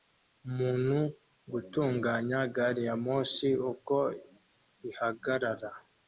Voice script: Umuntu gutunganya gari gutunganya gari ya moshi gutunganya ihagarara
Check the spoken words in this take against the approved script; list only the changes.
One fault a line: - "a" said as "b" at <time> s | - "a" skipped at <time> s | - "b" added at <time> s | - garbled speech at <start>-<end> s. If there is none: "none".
- "gutunganya gari" skipped at 2.8 s
- "gutunganya" said as "uko" at 3.7 s